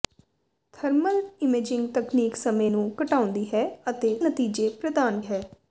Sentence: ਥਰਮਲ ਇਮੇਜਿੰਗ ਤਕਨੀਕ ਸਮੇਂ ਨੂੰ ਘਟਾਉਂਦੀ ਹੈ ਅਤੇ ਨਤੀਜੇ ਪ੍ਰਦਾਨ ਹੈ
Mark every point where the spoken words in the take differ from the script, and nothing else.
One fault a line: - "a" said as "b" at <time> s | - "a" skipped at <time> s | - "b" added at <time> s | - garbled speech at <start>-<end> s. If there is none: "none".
none